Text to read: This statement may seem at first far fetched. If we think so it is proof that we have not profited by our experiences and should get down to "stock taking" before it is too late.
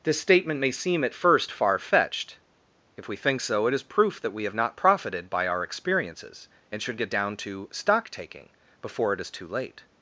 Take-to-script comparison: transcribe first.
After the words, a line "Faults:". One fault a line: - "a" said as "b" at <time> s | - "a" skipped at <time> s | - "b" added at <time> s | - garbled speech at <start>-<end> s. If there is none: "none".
This statement may seem at first far fetched. If we think so it is proof that we have not profited by our experiences and should get down to "stock taking" before it is too late.
Faults:
none